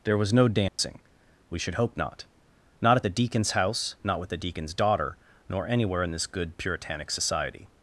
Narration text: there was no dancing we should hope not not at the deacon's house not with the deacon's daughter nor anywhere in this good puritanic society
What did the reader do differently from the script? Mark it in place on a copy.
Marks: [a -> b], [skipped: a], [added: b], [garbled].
there was no dancing we should hope not not at the deacon's house not with the deacon's daughter nor anywhere in this good puritanic society